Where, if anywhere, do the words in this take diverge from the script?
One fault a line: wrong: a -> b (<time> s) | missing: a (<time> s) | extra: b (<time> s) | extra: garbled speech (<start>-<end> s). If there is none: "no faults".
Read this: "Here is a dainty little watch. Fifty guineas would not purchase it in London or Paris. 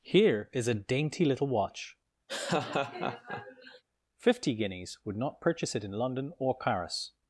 no faults